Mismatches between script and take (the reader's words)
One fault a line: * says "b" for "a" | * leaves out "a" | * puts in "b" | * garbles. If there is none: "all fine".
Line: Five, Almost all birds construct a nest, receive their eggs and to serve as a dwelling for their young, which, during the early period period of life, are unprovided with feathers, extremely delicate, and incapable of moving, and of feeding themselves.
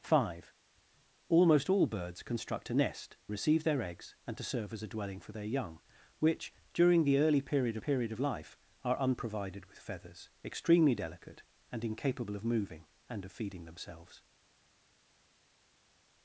all fine